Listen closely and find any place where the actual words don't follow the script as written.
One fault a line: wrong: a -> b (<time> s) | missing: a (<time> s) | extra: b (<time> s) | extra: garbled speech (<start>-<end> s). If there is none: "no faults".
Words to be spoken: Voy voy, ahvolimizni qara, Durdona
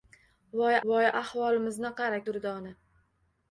no faults